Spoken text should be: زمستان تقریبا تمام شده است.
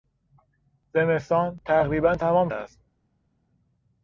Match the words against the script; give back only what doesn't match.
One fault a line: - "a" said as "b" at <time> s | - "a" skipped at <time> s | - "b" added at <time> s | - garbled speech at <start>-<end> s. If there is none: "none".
- "شده" skipped at 2.5 s